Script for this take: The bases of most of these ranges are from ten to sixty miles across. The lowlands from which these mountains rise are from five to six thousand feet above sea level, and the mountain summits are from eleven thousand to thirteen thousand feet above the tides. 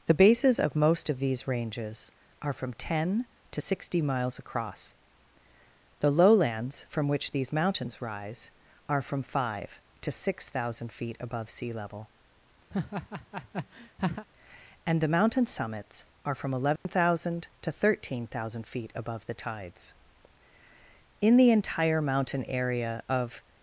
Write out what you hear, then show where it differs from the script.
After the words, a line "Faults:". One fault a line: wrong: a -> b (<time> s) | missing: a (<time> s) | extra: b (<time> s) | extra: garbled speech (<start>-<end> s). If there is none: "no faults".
The bases of most of these ranges are from ten to sixty miles across. The lowlands from which these mountains rise are from five to six thousand feet above sea level, and the mountain summits are from eleven thousand to thirteen thousand feet above the tides. In the entire mountain area of
Faults:
extra: In the entire mountain area of (21.2 s)